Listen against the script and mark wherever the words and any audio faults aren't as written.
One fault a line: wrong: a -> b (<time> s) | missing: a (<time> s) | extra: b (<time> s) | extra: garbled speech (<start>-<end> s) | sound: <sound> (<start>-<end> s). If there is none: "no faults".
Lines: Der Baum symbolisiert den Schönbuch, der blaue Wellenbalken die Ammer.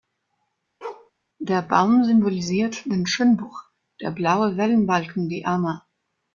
sound: bark (0.8-1.1 s)